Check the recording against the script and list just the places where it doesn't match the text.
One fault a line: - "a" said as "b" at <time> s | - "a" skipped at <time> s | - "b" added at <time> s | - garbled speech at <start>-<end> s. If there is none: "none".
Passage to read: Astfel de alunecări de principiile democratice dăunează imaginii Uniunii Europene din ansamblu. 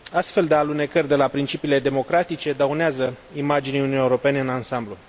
- "la" added at 1.1 s
- "din" said as "în" at 4.4 s